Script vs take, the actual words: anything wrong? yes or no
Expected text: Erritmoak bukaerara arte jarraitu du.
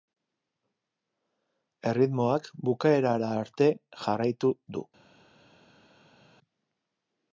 no